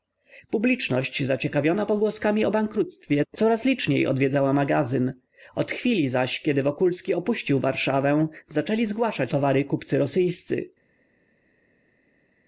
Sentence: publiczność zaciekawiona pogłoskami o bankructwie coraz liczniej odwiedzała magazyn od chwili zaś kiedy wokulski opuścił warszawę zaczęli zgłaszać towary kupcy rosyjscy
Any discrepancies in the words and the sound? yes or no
no